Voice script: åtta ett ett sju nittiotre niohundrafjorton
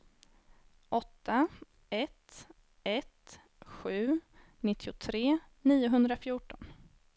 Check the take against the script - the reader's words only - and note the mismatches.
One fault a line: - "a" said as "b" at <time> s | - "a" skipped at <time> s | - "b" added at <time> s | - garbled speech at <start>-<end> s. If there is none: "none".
none